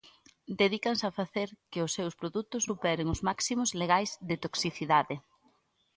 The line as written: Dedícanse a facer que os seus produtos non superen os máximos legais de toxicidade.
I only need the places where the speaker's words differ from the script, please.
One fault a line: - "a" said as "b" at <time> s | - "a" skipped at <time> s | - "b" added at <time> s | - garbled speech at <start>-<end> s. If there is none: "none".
- "non" skipped at 2.6 s